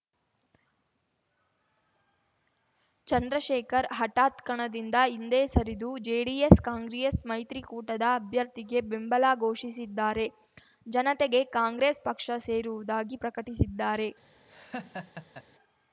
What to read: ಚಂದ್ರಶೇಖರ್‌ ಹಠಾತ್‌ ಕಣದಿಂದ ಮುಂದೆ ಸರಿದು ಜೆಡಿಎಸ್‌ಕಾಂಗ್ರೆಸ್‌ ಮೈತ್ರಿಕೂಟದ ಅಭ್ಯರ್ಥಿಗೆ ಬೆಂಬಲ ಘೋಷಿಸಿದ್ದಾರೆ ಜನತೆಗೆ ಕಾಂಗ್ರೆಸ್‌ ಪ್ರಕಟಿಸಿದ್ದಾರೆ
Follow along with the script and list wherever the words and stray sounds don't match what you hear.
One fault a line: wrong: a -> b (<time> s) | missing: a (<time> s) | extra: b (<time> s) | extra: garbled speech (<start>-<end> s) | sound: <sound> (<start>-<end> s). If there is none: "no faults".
wrong: ಮುಂದೆ -> ಹಿಂದೆ (5.1 s)
extra: ಪಕ್ಷ ಸೇರುವುದಾಗಿ (12.0 s)
sound: laugh (14.5-15.4 s)